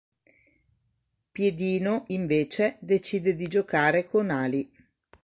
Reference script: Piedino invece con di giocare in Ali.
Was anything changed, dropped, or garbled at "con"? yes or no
yes